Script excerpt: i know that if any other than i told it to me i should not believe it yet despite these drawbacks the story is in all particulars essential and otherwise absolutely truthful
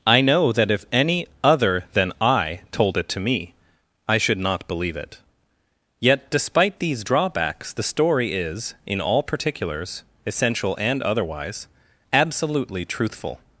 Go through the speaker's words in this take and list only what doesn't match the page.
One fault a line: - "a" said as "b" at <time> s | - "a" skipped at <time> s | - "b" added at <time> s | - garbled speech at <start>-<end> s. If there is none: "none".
none